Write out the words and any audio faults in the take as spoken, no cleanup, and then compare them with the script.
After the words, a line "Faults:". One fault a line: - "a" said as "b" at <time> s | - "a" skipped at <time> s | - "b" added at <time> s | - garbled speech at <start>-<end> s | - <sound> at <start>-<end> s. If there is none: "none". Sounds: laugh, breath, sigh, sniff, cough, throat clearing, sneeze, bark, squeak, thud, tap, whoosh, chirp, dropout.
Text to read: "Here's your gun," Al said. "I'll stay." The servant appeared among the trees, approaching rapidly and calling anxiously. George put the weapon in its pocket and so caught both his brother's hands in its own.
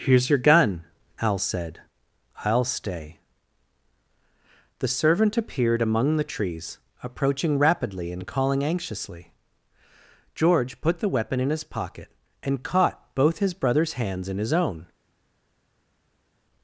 "Here's your gun," Al said. "I'll stay." The servant appeared among the trees, approaching rapidly and calling anxiously. George put the weapon in his pocket and caught both his brother's hands in his own.
Faults:
- "its" said as "his" at 11.5 s
- "so" skipped at 12.6 s
- "its" said as "his" at 14.4 s